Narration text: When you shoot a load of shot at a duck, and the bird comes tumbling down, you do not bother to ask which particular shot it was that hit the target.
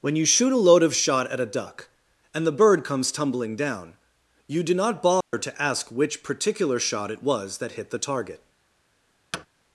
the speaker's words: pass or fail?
pass